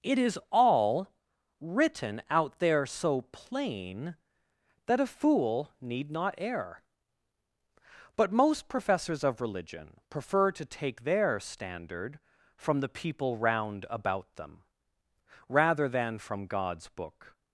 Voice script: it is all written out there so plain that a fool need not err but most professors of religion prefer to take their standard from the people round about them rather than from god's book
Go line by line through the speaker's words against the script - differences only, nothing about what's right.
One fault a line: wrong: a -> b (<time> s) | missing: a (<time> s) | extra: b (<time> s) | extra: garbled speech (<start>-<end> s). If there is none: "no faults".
no faults